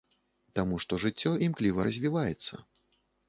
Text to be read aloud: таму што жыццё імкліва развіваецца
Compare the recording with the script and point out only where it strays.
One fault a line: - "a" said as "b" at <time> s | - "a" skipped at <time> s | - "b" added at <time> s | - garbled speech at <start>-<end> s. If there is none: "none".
none